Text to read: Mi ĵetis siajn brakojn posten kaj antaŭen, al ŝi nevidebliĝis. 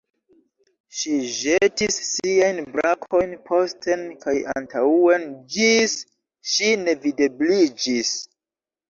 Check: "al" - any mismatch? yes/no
yes